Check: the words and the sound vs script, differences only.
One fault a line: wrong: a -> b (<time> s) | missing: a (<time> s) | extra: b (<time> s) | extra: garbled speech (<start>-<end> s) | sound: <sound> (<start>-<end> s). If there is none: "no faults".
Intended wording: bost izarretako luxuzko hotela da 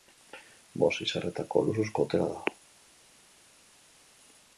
no faults